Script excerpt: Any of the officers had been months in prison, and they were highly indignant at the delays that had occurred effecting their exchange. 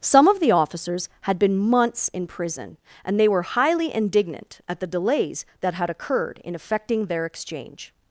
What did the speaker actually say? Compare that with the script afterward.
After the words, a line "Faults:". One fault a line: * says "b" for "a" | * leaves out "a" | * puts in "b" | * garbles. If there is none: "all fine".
Some of the officers had been months in prison, and they were highly indignant at the delays that had occurred in effecting their exchange.
Faults:
* says "Some" for "Any"
* puts in "in"